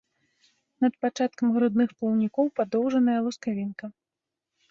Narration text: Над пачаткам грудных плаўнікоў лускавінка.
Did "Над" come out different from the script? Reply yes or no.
no